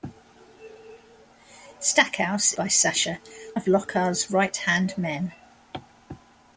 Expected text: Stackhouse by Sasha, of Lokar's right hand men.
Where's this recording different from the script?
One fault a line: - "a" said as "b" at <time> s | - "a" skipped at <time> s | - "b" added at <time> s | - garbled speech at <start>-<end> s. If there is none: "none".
none